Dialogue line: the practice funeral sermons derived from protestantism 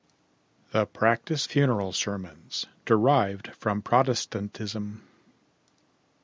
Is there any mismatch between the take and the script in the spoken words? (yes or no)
no